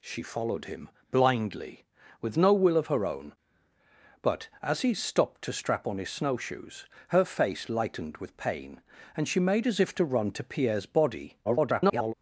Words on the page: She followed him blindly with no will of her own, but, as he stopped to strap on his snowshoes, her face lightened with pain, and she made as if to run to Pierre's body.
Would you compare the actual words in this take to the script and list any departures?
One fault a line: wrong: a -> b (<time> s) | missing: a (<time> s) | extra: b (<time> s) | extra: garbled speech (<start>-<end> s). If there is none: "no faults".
extra: garbled speech (11.4-12.1 s)